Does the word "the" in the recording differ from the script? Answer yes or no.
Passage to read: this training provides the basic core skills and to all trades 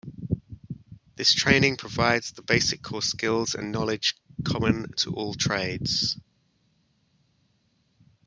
no